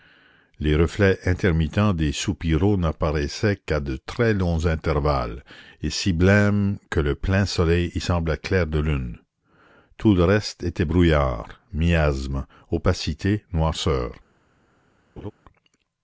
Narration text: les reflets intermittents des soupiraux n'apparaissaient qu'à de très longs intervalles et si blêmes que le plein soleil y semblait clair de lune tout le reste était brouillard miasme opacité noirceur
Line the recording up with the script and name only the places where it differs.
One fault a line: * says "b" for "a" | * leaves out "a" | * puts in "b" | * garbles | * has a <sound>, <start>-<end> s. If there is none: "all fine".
* has a laugh, 15.2-15.3 s